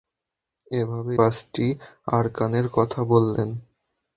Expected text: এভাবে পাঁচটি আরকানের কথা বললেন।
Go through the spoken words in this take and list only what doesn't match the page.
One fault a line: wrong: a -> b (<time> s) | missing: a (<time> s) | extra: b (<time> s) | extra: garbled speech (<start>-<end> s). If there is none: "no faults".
no faults